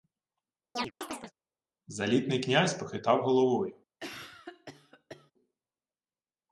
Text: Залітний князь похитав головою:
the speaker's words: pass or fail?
pass